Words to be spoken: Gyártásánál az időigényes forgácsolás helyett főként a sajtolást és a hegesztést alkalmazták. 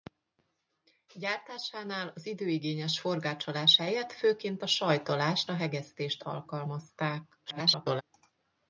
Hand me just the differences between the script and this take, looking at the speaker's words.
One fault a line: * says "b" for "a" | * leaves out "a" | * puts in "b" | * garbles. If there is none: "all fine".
* leaves out "és"
* garbles